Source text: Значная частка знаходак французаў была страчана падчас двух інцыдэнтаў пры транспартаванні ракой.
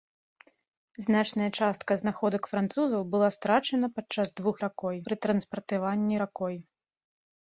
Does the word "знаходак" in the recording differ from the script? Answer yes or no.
no